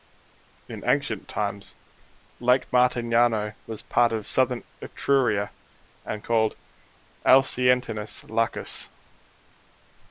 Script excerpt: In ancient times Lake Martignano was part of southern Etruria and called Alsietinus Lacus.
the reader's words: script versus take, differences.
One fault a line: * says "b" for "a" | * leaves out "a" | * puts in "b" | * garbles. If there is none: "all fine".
all fine